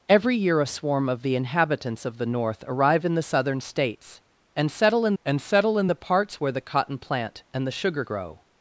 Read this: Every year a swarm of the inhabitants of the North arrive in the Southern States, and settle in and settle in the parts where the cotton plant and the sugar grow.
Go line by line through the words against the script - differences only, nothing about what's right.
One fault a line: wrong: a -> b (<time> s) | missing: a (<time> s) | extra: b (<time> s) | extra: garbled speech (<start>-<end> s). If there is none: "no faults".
no faults